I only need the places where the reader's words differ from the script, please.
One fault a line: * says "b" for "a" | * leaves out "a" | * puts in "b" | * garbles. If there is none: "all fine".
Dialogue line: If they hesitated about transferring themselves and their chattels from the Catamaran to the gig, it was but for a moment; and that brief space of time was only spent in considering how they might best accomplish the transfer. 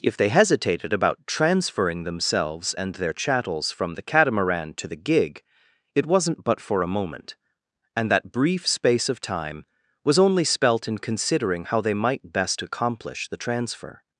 * says "wasn't" for "was"
* says "spelt" for "spent"